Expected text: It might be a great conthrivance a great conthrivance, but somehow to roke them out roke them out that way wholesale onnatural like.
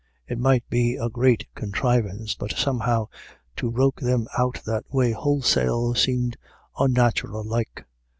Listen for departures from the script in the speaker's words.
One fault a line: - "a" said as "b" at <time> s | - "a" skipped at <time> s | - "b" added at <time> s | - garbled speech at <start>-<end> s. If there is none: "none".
- "a great conthrivance" skipped at 2.3 s
- "roke them out" skipped at 4.6 s
- "seemed" added at 5.9 s